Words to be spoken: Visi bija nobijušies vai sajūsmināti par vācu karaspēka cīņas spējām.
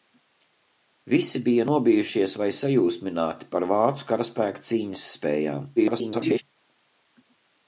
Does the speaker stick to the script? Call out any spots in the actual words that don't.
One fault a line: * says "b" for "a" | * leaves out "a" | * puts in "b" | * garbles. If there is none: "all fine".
* garbles